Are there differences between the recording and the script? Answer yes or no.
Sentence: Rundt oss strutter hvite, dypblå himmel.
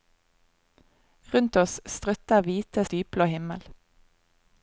no